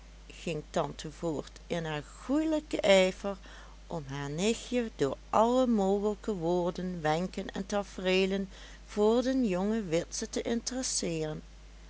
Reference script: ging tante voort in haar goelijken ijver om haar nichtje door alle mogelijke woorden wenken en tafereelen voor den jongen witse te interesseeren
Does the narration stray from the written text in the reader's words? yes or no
no